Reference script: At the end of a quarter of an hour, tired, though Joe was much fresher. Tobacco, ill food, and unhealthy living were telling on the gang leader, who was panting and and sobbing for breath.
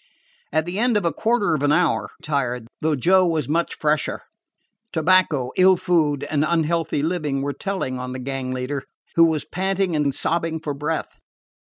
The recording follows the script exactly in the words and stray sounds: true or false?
true